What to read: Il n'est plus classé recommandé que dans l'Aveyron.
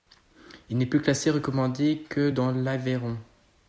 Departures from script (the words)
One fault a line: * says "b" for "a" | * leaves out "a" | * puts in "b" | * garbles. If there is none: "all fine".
all fine